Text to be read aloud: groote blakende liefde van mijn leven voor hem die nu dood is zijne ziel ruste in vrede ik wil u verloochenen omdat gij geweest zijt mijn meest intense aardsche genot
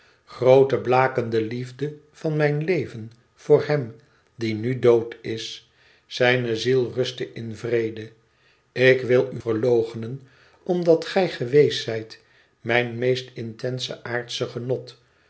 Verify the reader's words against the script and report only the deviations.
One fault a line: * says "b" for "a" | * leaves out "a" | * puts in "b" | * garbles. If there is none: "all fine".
all fine